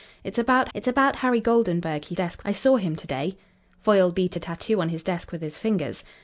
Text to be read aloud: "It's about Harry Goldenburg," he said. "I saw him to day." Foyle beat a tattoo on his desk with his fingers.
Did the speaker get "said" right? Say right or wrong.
wrong